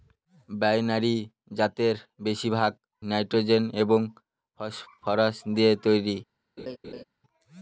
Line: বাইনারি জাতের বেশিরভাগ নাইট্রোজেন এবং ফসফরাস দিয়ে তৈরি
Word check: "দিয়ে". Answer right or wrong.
right